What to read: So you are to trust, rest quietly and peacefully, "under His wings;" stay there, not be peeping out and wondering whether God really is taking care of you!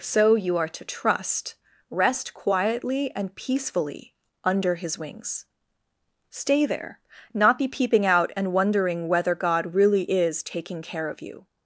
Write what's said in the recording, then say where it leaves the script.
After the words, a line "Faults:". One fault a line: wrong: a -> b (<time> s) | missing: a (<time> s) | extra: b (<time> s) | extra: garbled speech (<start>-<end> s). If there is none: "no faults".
So you are to trust, rest quietly and peacefully, "under His wings;" stay there, not be peeping out and wondering whether God really is taking care of you!
Faults:
no faults